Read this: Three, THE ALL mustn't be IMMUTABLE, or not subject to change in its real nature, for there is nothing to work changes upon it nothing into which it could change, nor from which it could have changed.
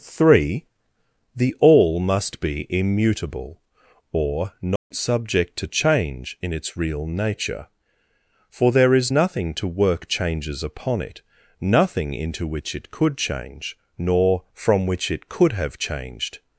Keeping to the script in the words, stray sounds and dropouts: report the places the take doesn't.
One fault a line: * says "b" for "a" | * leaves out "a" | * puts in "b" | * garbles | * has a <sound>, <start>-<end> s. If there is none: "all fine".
* says "must" for "mustn't"
* has a dropout, 4.8-4.9 s